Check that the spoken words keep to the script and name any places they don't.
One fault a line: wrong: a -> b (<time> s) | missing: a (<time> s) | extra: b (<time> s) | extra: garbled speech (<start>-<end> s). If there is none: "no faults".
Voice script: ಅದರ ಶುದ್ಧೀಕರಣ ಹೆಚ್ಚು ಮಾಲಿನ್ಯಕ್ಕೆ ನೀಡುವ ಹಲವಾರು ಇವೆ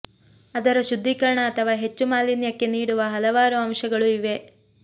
extra: ಅಥವಾ (1.5 s)
extra: ಅಂಶಗಳು (3.7 s)